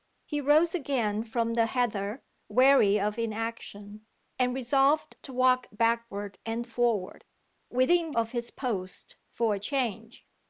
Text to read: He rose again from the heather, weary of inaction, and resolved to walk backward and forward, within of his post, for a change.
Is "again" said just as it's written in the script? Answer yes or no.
yes